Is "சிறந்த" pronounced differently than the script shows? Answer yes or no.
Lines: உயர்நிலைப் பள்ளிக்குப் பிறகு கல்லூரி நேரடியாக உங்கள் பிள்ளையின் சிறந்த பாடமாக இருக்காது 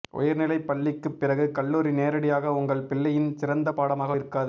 no